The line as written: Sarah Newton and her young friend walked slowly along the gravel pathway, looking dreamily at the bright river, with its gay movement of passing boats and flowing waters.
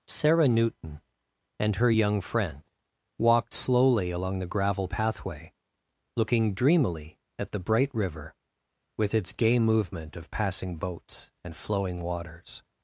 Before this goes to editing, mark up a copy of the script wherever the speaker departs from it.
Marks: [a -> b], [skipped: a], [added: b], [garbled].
Sarah Newton and her young friend walked slowly along the gravel pathway, looking dreamily at the bright river, with its gay movement of passing boats and flowing waters.